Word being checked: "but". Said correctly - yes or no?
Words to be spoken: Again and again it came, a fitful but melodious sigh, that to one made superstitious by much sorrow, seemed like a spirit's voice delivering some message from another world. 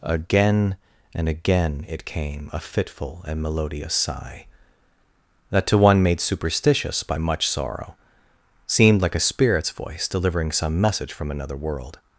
no